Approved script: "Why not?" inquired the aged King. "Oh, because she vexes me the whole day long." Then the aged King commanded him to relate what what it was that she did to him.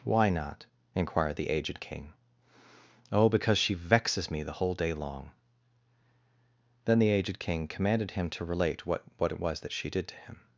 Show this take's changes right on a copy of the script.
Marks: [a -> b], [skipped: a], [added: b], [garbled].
"Why not?" inquired the aged King. "Oh, because she vexes me the whole day long." Then the aged King commanded him to relate what what it was that she did to him.